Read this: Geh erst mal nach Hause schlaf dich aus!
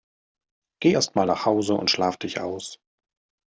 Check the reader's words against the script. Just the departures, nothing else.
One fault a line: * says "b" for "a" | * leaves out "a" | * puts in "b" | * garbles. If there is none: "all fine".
* puts in "und"